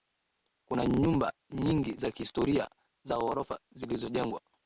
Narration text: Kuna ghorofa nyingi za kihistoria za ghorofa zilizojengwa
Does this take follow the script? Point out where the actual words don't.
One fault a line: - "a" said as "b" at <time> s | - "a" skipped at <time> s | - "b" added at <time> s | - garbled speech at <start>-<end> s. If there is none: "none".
- "ghorofa" said as "nyumba" at 0.8 s